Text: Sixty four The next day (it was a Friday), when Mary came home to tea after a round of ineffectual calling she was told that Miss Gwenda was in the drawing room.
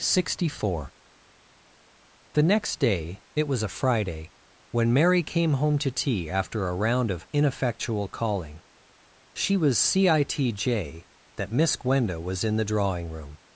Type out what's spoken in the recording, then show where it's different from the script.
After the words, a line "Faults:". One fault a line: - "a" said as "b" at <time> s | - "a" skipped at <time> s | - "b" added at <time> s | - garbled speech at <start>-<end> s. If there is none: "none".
Sixty four The next day (it was a Friday), when Mary came home to tea after a round of ineffectual calling she was citj that Miss Gwenda was in the drawing room.
Faults:
- "told" said as "citj" at 9.8 s